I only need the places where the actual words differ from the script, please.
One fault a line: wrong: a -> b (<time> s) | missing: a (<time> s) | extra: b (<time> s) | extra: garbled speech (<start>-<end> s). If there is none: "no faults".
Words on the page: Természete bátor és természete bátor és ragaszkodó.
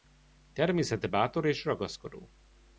missing: természete bátor és (1.6 s)